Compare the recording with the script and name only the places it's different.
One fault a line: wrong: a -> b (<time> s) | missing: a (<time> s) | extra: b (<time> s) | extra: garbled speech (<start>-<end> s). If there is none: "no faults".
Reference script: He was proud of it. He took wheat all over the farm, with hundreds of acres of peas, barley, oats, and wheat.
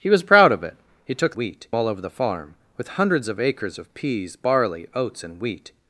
no faults